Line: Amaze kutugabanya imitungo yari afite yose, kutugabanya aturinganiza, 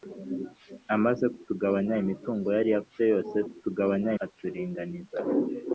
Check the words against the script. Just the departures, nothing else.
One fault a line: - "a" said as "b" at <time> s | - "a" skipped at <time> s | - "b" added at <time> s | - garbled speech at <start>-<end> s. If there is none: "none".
none